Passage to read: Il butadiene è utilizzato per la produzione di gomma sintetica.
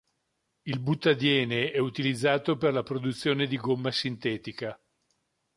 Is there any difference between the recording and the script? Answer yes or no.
no